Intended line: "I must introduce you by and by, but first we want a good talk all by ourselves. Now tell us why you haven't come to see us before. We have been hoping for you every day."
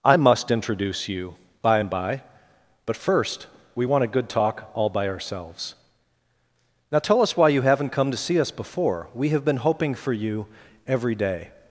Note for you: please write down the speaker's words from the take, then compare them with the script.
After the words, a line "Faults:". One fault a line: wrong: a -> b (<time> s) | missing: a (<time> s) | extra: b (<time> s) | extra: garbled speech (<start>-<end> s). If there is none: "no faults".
"I must introduce you by and by, but first we want a good talk all by ourselves. Now tell us why you haven't come to see us before. We have been hoping for you every day."
Faults:
no faults